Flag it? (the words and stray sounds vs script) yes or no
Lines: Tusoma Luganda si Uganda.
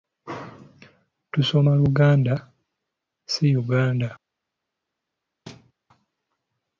yes